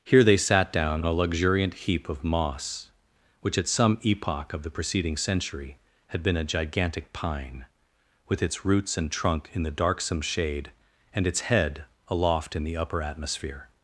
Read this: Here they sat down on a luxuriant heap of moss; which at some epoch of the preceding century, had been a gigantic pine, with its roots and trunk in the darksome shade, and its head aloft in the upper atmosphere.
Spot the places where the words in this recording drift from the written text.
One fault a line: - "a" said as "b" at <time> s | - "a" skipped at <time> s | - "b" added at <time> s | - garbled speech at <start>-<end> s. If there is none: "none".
- "on" skipped at 1.0 s